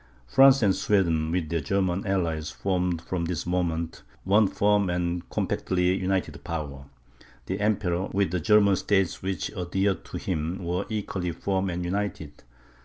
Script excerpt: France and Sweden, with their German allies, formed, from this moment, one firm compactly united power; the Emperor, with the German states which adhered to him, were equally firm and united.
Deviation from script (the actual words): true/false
true